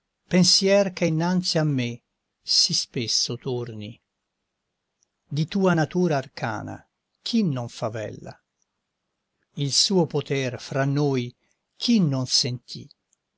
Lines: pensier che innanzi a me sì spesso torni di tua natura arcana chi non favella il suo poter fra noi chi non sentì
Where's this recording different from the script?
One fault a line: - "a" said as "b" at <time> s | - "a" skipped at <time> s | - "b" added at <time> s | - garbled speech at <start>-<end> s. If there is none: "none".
none